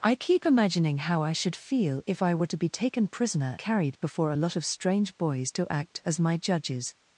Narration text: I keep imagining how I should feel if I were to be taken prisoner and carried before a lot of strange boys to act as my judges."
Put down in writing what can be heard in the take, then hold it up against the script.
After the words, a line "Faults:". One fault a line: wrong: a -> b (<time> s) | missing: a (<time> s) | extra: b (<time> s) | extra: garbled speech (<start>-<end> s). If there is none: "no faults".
I keep imagining how I should feel if I were to be taken prisoner carried before a lot of strange boys to act as my judges."
Faults:
missing: and (3.6 s)